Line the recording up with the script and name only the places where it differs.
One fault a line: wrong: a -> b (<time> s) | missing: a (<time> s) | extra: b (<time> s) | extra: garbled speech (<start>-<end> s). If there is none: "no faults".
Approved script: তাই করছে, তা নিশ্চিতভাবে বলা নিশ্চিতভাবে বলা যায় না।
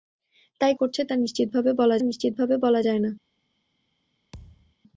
no faults